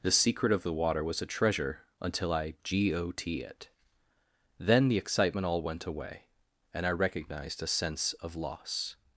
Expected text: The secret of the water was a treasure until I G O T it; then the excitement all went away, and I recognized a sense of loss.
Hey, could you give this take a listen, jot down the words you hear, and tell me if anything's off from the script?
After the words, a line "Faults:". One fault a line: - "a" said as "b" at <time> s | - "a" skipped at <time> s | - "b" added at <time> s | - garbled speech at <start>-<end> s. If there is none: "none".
The secret of the water was a treasure until I G O T it; then the excitement all went away, and I recognized a sense of loss.
Faults:
none